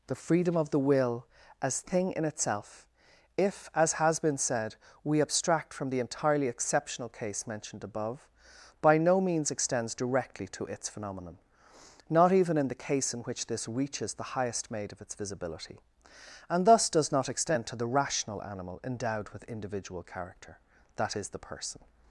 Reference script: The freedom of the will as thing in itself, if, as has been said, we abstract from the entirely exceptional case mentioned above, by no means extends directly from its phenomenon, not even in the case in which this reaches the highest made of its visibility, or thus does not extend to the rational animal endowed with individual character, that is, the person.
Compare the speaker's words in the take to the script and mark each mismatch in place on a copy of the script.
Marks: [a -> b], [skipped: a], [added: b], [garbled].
The freedom of the will as thing in itself, if, as has been said, we abstract from the entirely exceptional case mentioned above, by no means extends directly [from -> to] its phenomenon, not even in the case in which this reaches the highest made of its visibility, [or -> and] thus does not extend to the rational animal endowed with individual character, that is, the person.